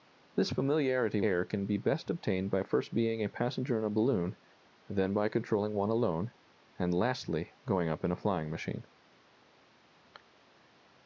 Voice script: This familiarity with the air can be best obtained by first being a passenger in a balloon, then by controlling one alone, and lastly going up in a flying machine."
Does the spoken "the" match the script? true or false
false